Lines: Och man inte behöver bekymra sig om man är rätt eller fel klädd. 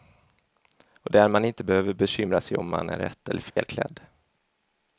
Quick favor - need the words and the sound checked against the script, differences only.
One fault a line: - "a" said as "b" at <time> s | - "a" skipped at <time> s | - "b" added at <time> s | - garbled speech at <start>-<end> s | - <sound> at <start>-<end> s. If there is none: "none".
- "där" added at 1.1 s
- dropout at 3.5-3.6 s